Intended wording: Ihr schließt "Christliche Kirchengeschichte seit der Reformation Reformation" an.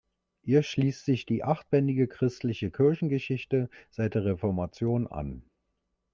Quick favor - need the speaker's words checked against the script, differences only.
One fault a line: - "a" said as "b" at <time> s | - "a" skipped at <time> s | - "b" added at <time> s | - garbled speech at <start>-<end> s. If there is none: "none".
- "sich die achtbändige" added at 1.1 s
- "Reformation" skipped at 5.0 s